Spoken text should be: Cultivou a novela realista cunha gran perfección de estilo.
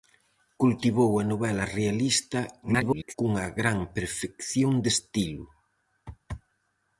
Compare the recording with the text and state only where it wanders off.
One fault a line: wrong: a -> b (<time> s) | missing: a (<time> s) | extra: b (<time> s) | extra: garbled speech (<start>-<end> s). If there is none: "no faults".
extra: garbled speech (2.6-3.1 s)